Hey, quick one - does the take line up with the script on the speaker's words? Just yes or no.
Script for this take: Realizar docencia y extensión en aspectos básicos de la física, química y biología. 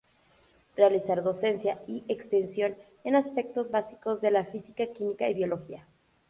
yes